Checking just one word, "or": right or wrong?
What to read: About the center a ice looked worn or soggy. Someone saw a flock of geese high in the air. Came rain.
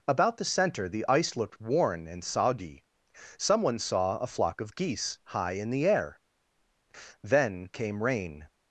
wrong